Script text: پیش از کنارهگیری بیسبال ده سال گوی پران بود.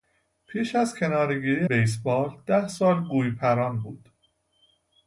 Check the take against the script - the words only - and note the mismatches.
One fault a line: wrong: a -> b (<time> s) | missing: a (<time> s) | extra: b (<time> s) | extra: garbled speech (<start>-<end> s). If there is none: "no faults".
no faults